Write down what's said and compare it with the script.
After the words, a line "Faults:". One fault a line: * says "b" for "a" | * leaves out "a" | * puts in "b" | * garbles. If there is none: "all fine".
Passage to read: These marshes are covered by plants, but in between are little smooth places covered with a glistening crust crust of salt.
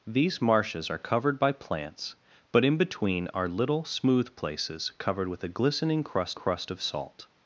These marshes are covered by plants, but in between are little smooth places covered with a glistening crust crust of salt.
Faults:
all fine